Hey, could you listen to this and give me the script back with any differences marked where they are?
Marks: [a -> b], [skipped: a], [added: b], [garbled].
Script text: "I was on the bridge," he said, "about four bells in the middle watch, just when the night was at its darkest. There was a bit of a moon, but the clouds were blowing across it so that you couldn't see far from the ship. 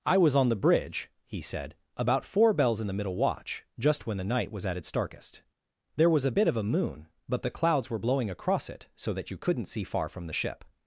"I was on the bridge," he said, "about four bells in the middle watch, just when the night was at its darkest. There was a bit of a moon, but the clouds were blowing across it so that you couldn't see far from the ship.